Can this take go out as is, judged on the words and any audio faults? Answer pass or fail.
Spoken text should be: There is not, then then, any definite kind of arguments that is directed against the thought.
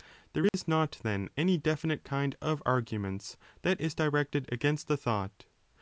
fail